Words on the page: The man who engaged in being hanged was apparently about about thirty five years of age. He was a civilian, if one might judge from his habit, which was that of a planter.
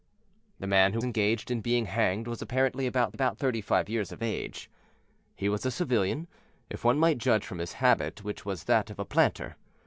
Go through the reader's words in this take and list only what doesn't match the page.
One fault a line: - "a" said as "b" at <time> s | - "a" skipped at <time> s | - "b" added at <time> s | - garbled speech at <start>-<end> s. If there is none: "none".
none